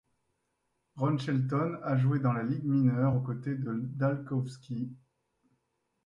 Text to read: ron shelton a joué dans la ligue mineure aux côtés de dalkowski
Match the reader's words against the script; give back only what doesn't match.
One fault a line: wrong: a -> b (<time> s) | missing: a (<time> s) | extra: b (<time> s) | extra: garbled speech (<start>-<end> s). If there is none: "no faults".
no faults